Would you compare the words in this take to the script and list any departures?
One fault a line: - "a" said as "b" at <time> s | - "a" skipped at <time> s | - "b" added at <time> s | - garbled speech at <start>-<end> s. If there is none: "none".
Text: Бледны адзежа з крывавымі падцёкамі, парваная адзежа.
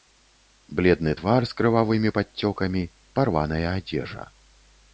- "адзежа" said as "твар" at 1.2 s